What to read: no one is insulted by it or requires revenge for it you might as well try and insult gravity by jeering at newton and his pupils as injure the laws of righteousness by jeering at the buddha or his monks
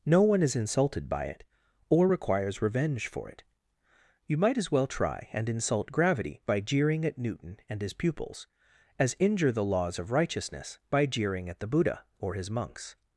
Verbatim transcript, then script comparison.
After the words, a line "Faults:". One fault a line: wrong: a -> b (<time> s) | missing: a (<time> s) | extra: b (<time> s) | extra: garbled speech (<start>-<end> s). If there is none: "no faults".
no one is insulted by it or requires revenge for it you might as well try and insult gravity by jeering at newton and his pupils as injure the laws of righteousness by jeering at the buddha or his monks
Faults:
no faults